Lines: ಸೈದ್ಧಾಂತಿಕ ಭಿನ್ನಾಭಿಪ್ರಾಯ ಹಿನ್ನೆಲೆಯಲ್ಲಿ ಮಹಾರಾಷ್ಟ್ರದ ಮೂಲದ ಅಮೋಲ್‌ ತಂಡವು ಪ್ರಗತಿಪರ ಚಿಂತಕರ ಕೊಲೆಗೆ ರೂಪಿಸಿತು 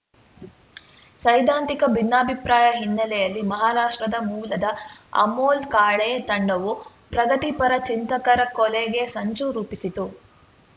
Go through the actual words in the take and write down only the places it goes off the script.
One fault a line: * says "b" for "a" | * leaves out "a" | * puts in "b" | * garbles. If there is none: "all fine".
* puts in "ಕಾಳೆ"
* puts in "ಸಂಚು"